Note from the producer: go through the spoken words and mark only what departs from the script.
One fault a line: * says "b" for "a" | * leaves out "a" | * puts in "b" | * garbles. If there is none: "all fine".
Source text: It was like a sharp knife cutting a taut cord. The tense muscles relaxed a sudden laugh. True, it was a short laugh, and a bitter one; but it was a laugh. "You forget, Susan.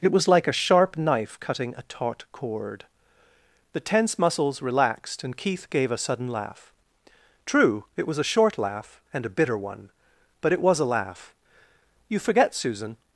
* puts in "and Keith gave"